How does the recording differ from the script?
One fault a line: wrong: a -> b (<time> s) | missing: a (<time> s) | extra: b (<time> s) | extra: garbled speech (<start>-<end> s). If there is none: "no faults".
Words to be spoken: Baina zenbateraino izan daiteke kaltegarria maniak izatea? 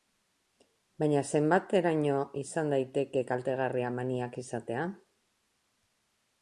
no faults